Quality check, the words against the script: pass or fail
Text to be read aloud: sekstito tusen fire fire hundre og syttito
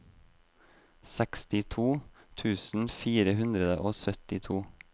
fail